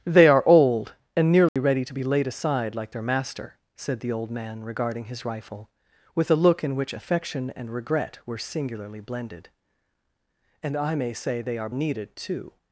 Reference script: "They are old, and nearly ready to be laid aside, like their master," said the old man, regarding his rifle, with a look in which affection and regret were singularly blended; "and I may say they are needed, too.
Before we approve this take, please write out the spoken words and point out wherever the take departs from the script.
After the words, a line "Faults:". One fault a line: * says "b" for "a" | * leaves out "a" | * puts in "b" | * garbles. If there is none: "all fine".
"They are old, and nearly ready to be laid aside, like their master," said the old man, regarding his rifle, with a look in which affection and regret were singularly blended; "and I may say they are needed, too.
Faults:
all fine